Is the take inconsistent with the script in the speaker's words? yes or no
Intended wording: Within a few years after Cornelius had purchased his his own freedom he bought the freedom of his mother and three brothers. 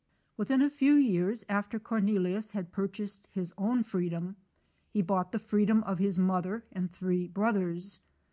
yes